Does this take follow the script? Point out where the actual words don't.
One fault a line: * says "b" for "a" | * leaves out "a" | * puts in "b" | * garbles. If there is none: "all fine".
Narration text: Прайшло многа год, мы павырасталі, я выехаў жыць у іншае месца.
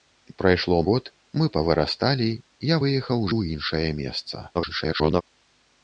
* leaves out "многа"
* leaves out "жыць"
* garbles